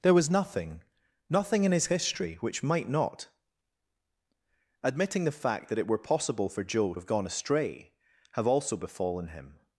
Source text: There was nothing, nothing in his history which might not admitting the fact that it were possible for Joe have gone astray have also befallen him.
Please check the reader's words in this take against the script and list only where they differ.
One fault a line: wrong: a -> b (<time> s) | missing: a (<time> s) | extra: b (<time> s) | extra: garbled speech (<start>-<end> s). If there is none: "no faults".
no faults